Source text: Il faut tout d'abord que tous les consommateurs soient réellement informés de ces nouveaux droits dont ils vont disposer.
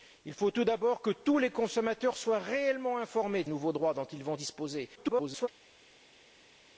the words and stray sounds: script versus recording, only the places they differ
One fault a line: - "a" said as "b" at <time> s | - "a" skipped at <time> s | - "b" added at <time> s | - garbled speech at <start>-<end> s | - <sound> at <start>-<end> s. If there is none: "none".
- "ces" skipped at 3.5 s
- garbled speech at 5.0-5.5 s